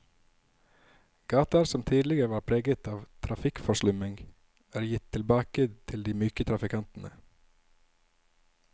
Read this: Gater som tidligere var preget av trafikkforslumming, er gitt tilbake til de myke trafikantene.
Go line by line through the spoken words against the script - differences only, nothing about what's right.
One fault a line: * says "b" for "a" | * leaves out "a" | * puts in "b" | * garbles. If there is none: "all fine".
all fine